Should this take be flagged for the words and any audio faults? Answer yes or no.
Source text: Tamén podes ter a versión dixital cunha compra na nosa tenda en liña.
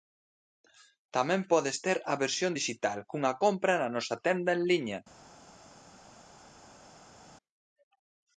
no